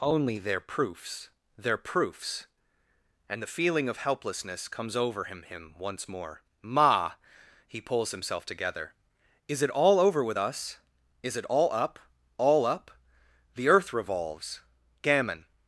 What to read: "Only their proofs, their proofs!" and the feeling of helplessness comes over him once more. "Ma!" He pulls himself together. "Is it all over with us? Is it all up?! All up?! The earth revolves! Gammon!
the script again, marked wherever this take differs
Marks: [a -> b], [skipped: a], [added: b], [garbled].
"Only their proofs, their proofs!" and the feeling of helplessness comes over him [added: him] once more. "Ma!" He pulls himself together. "Is it all over with us? Is it all up?! All up?! The earth revolves! Gammon!